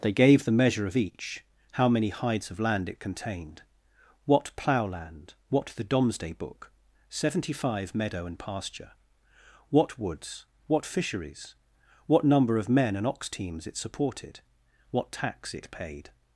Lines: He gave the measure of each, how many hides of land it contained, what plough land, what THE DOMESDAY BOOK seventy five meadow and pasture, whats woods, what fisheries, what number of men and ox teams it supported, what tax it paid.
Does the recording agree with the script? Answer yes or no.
no